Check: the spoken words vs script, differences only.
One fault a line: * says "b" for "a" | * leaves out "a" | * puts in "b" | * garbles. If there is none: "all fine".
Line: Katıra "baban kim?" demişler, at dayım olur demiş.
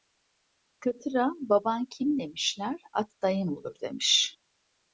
all fine